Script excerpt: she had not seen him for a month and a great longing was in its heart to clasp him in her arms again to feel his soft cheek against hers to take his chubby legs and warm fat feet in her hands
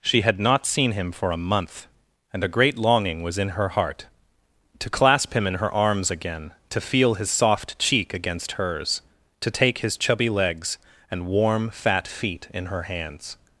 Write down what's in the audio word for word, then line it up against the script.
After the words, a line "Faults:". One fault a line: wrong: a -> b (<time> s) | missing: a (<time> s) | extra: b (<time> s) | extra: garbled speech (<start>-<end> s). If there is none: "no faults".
she had not seen him for a month and a great longing was in her heart to clasp him in her arms again to feel his soft cheek against hers to take his chubby legs and warm fat feet in her hands
Faults:
wrong: its -> her (3.5 s)